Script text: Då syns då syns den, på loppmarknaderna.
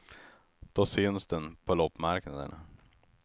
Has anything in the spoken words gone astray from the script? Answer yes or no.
yes